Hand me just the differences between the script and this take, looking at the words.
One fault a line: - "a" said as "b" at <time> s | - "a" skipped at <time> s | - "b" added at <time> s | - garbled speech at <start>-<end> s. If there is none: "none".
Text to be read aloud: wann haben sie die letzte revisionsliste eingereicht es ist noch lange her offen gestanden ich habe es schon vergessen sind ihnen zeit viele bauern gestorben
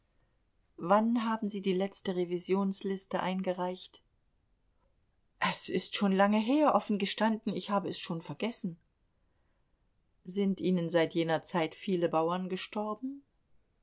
- "noch" said as "schon" at 6.0 s
- "seit jener" added at 10.9 s